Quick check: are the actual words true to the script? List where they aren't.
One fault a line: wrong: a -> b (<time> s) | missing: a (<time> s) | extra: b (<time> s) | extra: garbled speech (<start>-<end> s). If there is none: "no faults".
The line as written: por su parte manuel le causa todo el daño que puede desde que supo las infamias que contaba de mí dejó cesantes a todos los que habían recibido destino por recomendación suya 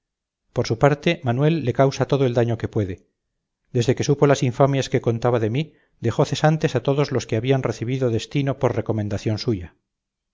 no faults